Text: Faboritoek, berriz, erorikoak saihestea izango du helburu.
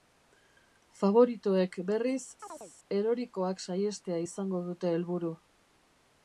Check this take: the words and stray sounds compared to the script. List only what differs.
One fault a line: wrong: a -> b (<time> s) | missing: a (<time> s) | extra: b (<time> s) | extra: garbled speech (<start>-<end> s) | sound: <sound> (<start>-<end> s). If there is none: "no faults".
sound: chirp (2.4-2.7 s)
wrong: du -> dute (4.7 s)